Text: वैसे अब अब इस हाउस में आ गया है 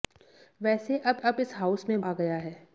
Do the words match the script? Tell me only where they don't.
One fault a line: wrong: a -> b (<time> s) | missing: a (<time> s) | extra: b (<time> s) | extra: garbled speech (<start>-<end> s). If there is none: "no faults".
no faults